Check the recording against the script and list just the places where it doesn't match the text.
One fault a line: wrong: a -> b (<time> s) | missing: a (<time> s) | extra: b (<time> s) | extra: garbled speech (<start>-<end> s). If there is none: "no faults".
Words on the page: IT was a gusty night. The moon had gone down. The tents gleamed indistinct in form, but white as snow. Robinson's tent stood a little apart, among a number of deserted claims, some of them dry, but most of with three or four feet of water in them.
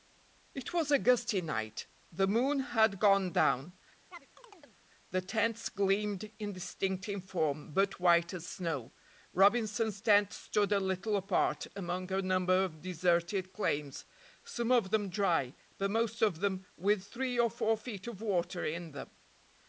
extra: them (16.4 s)